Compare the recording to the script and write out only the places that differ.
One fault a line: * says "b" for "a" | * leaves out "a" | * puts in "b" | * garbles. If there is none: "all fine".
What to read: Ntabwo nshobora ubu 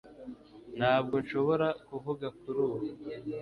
* puts in "kuvuga kuri"